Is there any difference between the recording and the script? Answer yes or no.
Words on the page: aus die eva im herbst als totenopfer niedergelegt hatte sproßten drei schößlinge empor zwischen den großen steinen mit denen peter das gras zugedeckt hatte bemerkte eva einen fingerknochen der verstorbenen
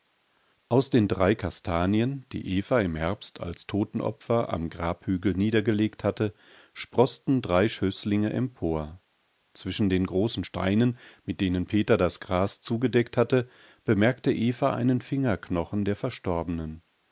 yes